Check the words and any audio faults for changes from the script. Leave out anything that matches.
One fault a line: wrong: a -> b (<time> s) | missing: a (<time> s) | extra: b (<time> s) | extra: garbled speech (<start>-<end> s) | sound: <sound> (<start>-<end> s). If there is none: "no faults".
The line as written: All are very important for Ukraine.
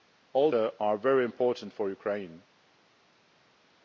no faults